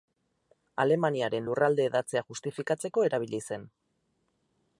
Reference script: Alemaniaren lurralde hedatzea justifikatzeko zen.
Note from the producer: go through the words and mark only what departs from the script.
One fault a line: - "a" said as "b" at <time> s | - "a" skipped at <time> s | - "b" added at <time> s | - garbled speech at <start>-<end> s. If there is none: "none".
- "erabili" added at 3.1 s